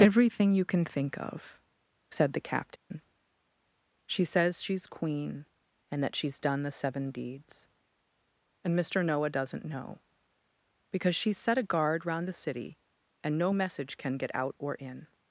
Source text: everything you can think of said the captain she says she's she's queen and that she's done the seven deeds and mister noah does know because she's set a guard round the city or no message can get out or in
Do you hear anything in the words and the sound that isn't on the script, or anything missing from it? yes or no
yes